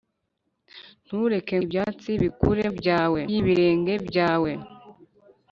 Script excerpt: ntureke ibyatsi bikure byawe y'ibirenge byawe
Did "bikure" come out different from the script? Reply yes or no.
no